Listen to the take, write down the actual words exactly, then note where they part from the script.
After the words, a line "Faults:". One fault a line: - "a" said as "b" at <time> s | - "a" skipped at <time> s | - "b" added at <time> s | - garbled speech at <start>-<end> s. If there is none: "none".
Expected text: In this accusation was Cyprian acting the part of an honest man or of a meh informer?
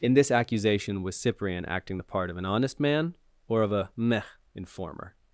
In this accusation was Cyprian acting the part of an honest man or of a meh informer?
Faults:
none